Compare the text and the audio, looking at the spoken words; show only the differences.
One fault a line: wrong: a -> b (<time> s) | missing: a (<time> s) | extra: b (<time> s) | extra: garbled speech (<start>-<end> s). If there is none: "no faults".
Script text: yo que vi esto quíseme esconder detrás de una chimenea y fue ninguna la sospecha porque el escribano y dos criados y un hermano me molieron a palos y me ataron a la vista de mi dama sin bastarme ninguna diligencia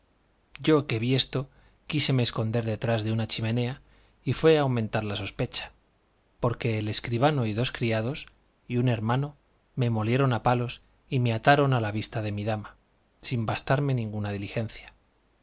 wrong: ninguna -> aumentar (4.6 s)